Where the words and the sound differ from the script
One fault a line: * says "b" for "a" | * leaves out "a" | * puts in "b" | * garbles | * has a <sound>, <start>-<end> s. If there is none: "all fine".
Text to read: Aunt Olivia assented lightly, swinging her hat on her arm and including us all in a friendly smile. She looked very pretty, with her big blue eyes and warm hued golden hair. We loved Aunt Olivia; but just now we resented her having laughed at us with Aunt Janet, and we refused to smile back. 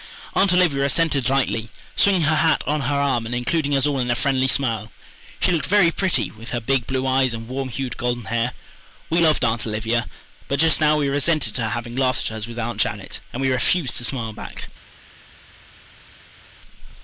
all fine